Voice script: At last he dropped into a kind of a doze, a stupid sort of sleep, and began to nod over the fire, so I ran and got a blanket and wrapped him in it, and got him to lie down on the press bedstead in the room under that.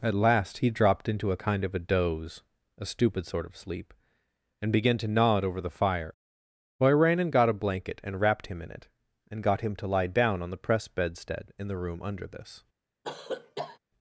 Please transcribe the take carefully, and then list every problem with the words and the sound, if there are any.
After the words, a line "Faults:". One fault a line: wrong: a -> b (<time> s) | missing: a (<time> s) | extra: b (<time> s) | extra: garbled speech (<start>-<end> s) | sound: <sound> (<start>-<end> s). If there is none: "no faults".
At last he dropped into a kind of a doze, a stupid sort of sleep, and began to nod over the fire, so I ran and got a blanket and wrapped him in it, and got him to lie down on the press bedstead in the room under this.
Faults:
wrong: that -> this (12.2 s)
sound: cough (13.0-13.8 s)